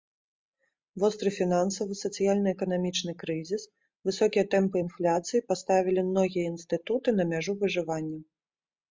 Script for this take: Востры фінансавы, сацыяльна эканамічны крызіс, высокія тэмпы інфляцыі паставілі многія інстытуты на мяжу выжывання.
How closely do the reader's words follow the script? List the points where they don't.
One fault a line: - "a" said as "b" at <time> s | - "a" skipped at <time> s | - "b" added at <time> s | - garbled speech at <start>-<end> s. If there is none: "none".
none